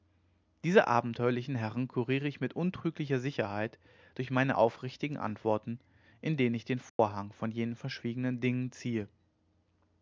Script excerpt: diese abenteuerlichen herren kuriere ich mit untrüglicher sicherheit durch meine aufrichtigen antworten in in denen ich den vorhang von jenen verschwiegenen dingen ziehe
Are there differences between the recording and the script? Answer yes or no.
yes